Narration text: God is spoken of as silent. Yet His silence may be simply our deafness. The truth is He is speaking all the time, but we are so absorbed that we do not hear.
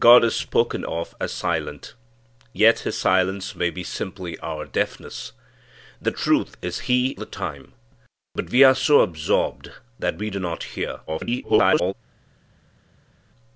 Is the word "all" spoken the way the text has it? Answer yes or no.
no